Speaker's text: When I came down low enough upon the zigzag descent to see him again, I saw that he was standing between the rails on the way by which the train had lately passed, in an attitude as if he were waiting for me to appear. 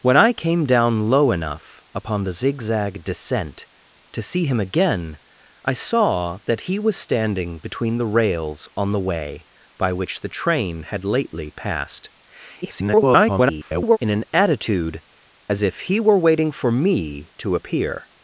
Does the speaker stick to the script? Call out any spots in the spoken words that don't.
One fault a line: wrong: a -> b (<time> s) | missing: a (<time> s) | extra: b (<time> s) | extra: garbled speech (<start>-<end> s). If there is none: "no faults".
extra: garbled speech (12.6-14.0 s)